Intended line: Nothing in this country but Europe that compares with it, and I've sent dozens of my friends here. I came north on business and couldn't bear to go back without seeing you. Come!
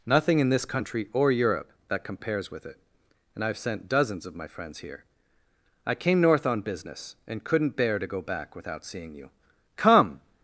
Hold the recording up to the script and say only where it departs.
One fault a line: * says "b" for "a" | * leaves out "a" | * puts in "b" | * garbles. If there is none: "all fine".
* says "or" for "but"